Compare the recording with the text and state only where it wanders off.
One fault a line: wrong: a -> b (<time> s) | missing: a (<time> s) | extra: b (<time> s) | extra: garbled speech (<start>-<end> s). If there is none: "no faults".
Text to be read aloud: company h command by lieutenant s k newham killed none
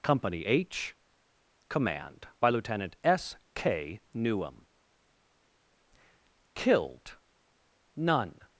no faults